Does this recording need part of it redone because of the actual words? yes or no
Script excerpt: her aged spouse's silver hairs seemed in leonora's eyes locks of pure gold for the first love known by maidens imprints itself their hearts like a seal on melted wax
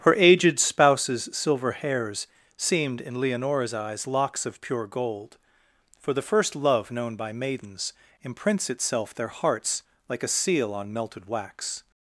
no